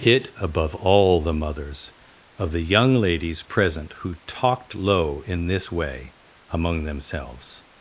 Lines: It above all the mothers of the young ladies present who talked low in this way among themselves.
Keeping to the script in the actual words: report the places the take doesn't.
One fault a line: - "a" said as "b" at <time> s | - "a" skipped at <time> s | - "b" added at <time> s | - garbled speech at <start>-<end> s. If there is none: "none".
none